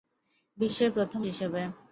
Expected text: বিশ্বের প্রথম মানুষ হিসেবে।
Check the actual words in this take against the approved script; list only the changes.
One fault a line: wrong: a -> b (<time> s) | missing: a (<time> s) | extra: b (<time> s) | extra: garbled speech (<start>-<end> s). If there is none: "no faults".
missing: মানুষ (1.2 s)